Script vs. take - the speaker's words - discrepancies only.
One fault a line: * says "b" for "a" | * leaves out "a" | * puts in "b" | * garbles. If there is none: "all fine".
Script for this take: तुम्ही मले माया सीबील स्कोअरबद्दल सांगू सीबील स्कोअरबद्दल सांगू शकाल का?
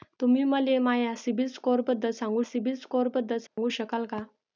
all fine